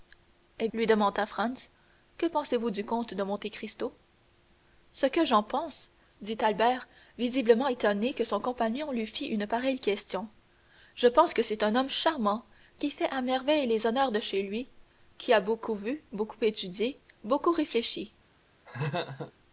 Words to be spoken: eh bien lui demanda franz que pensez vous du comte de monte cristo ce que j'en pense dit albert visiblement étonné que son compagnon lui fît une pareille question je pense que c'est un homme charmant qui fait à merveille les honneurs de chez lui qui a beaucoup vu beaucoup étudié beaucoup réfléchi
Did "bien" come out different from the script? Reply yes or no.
yes